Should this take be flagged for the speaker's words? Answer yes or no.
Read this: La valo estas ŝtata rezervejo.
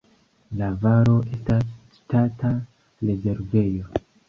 no